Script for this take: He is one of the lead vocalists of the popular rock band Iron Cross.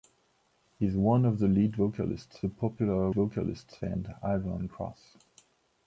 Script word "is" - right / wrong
right